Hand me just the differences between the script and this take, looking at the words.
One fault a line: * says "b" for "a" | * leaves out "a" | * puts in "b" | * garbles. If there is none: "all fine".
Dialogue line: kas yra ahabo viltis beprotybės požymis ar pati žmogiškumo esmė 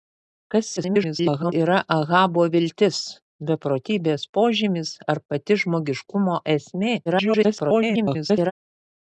* garbles
* garbles